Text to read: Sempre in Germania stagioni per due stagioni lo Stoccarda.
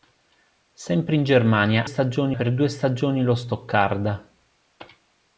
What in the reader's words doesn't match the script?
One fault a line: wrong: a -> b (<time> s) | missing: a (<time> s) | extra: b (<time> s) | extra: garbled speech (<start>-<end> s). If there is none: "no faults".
no faults